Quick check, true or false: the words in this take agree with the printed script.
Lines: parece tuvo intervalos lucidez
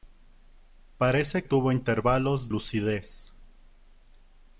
true